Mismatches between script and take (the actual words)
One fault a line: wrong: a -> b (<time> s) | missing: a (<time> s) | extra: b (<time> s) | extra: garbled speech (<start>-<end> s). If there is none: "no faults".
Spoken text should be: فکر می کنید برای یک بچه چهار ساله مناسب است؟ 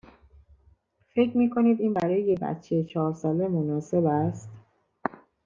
extra: این (1.8 s)